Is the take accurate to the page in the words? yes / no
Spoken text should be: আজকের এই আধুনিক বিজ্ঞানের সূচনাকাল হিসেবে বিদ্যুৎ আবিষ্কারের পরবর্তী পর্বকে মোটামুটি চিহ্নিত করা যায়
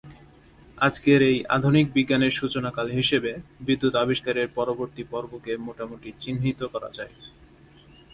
yes